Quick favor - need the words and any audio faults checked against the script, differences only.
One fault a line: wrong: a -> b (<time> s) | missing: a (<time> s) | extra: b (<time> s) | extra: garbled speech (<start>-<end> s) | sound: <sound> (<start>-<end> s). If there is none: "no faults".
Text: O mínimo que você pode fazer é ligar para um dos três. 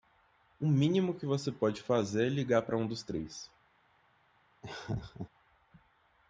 sound: laugh (4.6-5.3 s)